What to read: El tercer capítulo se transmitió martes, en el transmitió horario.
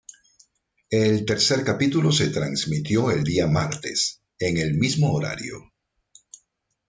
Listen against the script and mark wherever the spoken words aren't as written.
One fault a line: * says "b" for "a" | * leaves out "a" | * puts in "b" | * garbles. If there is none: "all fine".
* puts in "el día"
* says "mismo" for "transmitió"